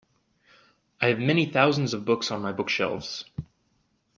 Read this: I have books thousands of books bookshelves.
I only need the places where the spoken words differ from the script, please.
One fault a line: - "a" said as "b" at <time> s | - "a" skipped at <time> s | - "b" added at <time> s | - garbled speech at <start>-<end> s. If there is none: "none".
- "books" said as "many" at 1.2 s
- "on my" added at 2.3 s